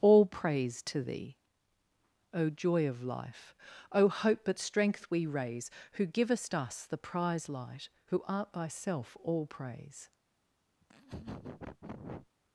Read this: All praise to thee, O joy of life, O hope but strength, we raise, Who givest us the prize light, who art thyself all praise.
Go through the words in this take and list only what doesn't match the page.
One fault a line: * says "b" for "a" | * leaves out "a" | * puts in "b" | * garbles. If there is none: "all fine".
all fine